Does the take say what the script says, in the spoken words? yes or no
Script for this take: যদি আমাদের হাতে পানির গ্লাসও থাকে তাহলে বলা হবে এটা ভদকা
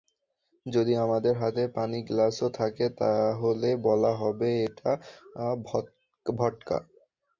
yes